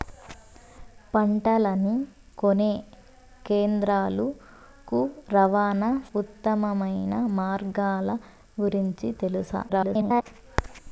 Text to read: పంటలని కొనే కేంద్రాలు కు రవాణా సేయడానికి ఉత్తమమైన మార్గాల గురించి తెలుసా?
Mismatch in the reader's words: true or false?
true